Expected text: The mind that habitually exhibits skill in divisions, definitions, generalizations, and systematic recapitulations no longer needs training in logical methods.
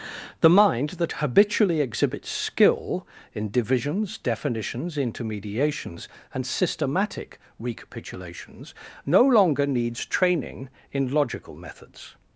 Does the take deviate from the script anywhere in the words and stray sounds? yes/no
yes